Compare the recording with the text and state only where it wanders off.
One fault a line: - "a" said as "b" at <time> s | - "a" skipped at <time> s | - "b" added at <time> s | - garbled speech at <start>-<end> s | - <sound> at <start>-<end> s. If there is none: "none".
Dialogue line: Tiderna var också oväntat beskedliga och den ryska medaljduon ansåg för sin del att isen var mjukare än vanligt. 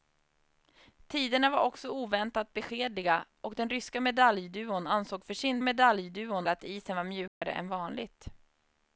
- "del" said as "medaljduon" at 5.6 s
- dropout at 7.3-7.4 s